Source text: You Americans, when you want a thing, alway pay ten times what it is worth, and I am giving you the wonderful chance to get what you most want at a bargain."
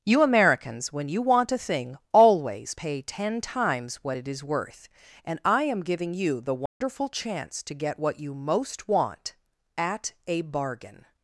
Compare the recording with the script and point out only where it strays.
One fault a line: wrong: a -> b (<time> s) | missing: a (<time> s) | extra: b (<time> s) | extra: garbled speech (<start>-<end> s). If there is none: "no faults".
wrong: alway -> always (2.1 s)